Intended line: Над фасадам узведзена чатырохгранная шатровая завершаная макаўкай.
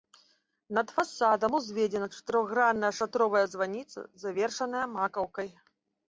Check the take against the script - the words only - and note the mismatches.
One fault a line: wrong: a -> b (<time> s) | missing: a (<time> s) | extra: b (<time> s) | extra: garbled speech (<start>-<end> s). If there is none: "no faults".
extra: званіца (3.5 s)